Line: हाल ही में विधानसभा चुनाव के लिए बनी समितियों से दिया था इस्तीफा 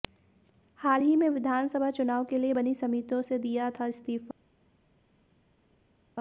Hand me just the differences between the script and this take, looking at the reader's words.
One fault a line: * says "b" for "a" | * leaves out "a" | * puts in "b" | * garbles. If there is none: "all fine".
all fine